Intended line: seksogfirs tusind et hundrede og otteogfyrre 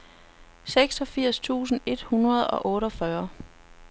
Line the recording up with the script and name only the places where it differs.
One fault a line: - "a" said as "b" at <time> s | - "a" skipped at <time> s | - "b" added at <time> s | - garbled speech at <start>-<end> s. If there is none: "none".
none